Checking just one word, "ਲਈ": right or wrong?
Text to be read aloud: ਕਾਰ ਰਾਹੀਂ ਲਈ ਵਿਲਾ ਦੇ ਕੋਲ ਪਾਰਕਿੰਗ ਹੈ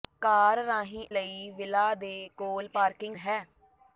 right